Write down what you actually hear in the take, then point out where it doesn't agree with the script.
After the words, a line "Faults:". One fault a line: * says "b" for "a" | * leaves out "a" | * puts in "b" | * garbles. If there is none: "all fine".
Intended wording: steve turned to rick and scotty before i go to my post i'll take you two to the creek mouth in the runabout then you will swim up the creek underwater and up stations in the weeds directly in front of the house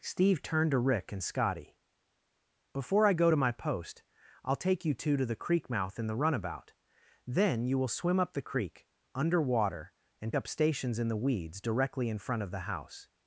steve turned to rick and scotty before i go to my post i'll take you two to the creek mouth in the runabout then you will swim up the creek underwater and up stations in the weeds directly in front of the house
Faults:
all fine